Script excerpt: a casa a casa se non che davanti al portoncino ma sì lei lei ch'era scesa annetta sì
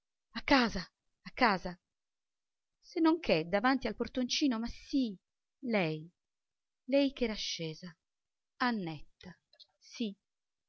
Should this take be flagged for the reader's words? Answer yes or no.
no